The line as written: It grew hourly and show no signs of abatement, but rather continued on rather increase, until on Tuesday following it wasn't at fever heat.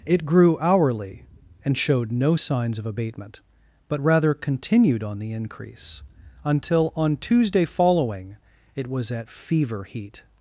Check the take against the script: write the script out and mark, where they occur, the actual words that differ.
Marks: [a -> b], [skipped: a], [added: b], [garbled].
It grew hourly and [show -> showed] no signs of abatement, but rather continued on [rather -> the] increase, until on Tuesday following it [wasn't -> was] at fever heat.